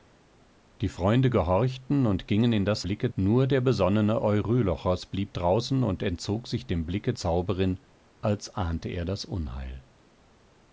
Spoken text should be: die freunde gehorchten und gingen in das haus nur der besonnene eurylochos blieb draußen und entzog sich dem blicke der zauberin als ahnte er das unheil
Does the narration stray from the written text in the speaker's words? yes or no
yes